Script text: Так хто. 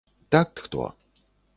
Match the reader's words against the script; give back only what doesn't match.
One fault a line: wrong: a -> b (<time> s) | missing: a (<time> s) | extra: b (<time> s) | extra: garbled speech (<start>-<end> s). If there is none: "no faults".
no faults